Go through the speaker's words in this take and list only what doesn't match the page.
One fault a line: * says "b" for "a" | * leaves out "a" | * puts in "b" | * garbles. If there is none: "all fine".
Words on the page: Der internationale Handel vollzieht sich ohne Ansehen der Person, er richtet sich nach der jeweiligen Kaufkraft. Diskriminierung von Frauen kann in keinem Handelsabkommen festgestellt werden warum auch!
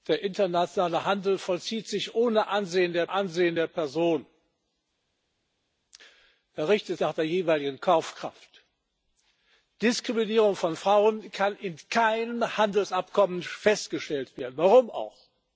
* puts in "Ansehen der"
* leaves out "sich"